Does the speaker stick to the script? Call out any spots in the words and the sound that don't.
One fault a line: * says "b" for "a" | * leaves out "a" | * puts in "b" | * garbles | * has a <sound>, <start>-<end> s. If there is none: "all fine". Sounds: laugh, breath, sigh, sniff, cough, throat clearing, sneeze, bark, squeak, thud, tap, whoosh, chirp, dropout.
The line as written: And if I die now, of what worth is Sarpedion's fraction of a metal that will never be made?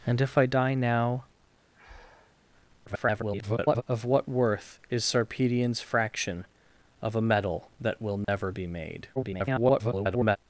* has a breath, 1.7-2.4 s
* garbles
* has a dropout, 8.2-8.3 s
* garbles